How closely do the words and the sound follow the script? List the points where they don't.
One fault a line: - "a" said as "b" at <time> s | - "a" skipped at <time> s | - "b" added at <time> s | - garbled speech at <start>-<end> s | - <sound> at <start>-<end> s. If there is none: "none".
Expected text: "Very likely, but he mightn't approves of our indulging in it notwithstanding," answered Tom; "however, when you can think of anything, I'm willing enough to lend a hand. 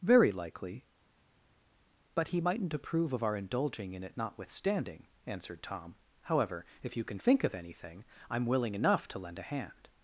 - "approves" said as "approve" at 2.7 s
- "when" said as "if" at 6.8 s